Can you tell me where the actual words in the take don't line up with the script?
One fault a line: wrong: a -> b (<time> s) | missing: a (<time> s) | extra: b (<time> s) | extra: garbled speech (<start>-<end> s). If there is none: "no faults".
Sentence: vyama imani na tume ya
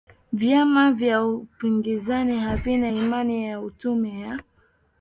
extra: vya upinzani havina (0.9 s)